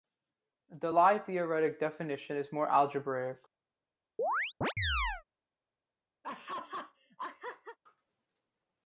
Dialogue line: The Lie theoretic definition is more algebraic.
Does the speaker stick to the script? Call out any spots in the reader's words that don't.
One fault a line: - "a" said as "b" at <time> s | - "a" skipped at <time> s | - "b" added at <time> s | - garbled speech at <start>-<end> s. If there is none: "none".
none